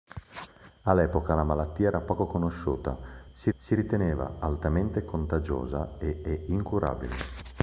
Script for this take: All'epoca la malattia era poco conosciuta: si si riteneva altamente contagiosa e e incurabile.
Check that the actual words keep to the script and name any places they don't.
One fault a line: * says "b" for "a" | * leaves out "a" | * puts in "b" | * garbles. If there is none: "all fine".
all fine